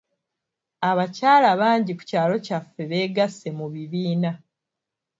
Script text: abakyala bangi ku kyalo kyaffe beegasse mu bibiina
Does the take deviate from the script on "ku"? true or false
false